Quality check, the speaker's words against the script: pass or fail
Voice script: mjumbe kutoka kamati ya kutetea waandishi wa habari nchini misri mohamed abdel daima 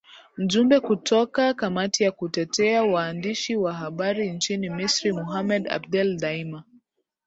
pass